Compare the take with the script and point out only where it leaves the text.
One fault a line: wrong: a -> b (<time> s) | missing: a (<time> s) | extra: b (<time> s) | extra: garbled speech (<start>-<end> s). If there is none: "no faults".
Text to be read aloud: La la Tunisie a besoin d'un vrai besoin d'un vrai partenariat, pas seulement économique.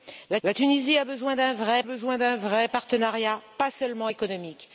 no faults